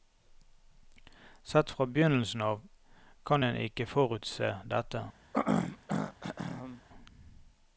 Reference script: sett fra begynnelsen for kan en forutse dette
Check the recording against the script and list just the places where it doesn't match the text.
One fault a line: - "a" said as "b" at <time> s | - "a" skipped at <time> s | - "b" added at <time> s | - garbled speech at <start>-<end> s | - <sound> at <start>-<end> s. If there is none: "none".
- "for" said as "av" at 2.4 s
- "ikke" added at 3.6 s
- throat clearing at 5.3-6.8 s